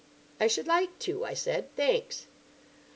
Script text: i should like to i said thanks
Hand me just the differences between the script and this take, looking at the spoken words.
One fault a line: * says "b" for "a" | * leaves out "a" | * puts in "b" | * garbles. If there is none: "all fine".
all fine